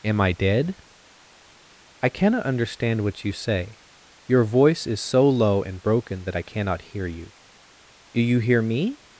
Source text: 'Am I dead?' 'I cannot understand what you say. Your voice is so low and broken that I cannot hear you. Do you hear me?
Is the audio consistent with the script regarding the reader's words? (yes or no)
yes